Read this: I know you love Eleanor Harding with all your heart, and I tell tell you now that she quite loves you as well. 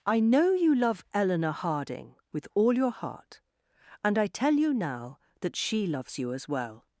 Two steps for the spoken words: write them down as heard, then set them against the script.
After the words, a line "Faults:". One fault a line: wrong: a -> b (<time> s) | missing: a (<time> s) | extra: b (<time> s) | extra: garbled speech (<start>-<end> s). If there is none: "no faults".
I know you love Eleanor Harding with all your heart, and I tell you now that she loves you as well.
Faults:
missing: tell (4.5 s)
missing: quite (5.8 s)